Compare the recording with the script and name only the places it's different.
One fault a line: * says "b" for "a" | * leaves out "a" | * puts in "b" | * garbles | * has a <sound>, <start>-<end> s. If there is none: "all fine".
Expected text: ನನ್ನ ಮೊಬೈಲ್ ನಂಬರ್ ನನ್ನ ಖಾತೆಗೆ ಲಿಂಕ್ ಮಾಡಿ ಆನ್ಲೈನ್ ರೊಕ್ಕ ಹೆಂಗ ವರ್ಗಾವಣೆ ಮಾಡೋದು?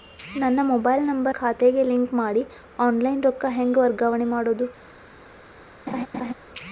* leaves out "ನನ್ನ"
* has a laugh, 5.9-6.3 s